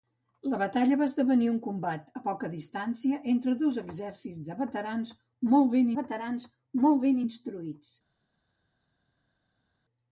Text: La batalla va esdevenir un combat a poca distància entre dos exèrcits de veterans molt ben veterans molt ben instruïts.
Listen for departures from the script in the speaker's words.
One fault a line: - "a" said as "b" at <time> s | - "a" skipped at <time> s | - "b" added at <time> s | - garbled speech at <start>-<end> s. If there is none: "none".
none